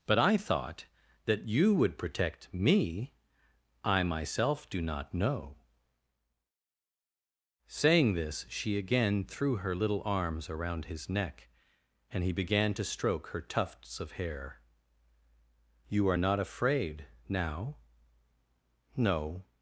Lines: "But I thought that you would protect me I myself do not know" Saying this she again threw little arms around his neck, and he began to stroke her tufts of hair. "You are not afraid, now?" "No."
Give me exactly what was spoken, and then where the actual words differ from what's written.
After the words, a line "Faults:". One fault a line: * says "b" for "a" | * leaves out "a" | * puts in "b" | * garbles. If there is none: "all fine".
"But I thought that you would protect me I myself do not know" Saying this she again threw her little arms around his neck, and he began to stroke her tufts of hair. "You are not afraid, now?" "No."
Faults:
* puts in "her"